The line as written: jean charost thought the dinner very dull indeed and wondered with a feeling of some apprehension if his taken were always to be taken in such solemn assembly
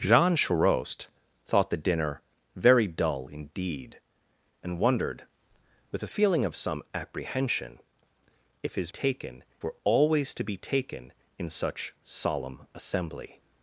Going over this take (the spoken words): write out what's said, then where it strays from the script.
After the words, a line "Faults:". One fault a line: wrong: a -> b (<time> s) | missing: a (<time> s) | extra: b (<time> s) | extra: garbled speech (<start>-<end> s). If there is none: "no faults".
jean charost thought the dinner very dull indeed and wondered with a feeling of some apprehension if his taken were always to be taken in such solemn assembly
Faults:
no faults